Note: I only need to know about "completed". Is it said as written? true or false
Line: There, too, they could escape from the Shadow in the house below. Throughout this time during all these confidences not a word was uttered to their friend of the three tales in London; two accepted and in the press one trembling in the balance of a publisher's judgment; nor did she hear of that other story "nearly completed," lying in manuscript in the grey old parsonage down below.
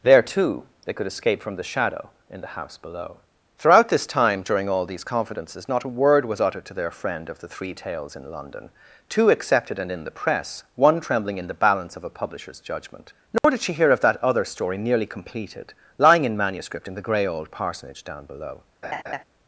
true